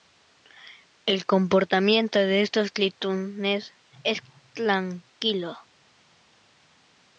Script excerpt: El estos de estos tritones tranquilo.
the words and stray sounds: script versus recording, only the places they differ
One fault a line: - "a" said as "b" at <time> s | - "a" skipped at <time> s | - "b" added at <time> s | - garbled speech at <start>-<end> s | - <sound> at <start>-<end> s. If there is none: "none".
- "estos" said as "comportamiento" at 1.3 s
- "es" added at 4.0 s